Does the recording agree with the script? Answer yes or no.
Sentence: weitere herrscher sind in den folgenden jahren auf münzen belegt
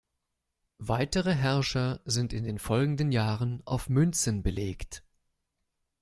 yes